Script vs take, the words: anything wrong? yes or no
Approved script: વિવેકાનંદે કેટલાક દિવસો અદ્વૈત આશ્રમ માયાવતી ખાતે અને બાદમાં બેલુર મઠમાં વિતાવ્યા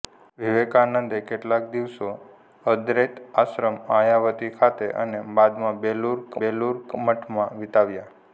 yes